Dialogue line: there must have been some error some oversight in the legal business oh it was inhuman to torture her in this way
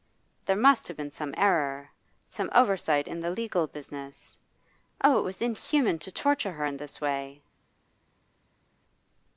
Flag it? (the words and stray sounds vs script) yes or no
no